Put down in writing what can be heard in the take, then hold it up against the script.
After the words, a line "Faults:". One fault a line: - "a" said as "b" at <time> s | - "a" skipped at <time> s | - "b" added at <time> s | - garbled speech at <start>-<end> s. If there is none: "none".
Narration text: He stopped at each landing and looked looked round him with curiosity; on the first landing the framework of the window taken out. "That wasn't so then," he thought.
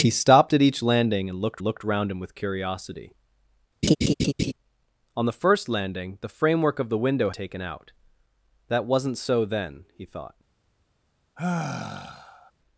He stopped at each landing and looked looked round him with curiosity; on the first landing the framework of the window taken out. "That wasn't so then," he thought.
Faults:
none